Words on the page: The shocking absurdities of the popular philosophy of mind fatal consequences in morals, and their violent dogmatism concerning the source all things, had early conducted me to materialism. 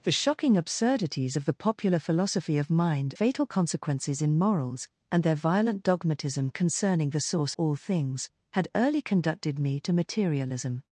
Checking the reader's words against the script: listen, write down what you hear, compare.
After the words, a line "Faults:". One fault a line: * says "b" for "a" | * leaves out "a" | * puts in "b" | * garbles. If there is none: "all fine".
The shocking absurdities of the popular philosophy of mind fatal consequences in morals, and their violent dogmatism concerning the source all things, had early conducted me to materialism.
Faults:
all fine